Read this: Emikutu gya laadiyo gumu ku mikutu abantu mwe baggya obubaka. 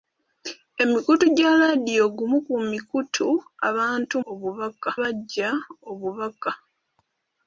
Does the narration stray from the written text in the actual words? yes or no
yes